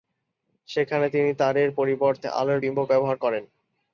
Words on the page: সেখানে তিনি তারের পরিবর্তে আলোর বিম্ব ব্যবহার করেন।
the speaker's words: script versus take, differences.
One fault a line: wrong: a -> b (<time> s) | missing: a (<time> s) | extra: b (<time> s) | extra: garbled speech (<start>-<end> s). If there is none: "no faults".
no faults